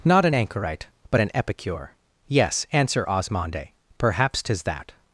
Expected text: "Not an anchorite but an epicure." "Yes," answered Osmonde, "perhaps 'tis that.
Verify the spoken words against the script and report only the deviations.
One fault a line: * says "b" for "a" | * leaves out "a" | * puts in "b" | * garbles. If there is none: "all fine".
* says "answer" for "answered"